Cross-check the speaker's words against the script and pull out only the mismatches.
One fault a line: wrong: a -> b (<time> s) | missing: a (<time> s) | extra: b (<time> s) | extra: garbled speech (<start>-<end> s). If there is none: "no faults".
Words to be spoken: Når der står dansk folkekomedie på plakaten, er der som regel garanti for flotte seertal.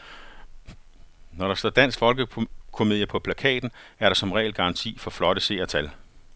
no faults